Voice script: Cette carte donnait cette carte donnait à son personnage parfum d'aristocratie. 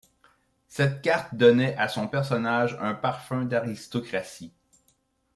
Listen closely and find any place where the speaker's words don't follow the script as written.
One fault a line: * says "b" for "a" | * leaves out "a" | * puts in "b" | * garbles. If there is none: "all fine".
* leaves out "cette carte donnait"
* puts in "un"